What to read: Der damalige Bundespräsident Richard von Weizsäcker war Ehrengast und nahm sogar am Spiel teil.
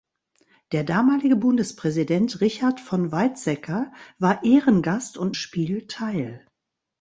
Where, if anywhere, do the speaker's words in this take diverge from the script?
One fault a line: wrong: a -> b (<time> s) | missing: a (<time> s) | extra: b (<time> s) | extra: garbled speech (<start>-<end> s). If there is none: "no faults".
missing: nahm sogar am (5.3 s)